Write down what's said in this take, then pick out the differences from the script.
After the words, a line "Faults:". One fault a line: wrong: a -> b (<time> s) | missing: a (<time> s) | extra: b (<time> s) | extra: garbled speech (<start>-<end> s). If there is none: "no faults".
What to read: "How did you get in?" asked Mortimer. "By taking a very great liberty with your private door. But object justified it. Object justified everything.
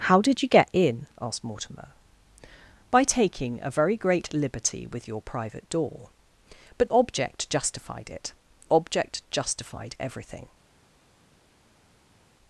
"How did you get in?" asked Mortimer. "By taking a very great liberty with your private door. But object justified it. Object justified everything.
Faults:
no faults